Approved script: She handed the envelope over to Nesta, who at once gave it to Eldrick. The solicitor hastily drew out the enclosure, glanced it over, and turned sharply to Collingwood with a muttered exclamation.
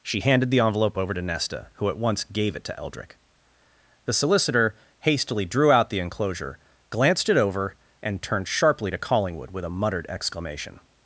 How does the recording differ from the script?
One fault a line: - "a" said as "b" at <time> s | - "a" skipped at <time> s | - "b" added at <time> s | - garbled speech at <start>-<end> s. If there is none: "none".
none